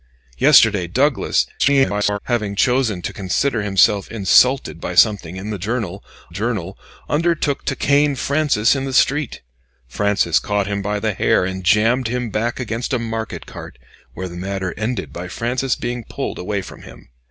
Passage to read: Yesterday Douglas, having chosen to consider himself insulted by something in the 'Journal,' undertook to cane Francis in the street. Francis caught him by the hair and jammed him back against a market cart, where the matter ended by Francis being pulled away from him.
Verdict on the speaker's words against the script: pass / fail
fail